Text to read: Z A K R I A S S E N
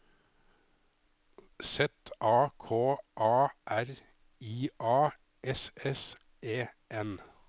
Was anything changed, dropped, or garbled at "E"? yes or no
no